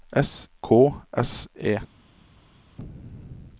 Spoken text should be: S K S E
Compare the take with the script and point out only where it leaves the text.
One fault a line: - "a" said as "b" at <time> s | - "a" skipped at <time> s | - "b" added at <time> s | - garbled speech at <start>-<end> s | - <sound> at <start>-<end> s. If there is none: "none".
none